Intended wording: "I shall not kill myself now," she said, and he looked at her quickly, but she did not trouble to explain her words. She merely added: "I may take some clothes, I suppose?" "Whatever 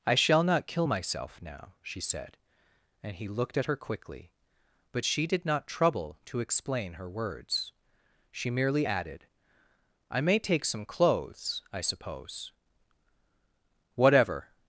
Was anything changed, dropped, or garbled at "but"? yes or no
no